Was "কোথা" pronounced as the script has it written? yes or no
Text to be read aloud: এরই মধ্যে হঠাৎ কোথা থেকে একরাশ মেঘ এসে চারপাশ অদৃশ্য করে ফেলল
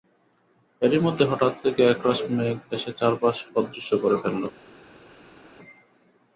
no